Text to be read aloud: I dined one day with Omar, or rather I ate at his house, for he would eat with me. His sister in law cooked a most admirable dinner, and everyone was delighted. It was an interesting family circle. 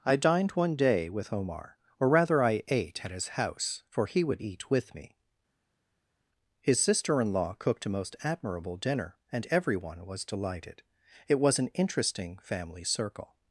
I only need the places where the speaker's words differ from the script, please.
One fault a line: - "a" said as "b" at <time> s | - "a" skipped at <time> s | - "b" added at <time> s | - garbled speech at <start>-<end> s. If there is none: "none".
none